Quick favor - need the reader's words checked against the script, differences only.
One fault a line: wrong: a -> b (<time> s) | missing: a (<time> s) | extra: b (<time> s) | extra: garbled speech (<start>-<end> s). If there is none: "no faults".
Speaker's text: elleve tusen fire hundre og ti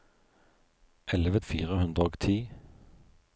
missing: tusen (1.4 s)